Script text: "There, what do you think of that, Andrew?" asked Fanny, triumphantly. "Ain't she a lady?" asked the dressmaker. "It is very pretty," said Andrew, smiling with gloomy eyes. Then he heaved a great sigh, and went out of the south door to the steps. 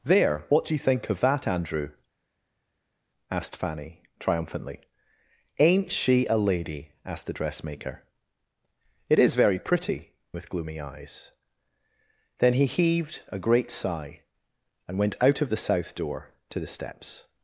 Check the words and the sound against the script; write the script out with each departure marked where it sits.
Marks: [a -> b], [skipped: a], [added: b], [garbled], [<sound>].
"There, what do you think of that, Andrew?" asked Fanny, triumphantly. "Ain't she a lady?" asked the dressmaker. "It is very pretty," [skipped: said Andrew, smiling] with gloomy eyes. Then he heaved a great sigh, and went out of the south door to the steps.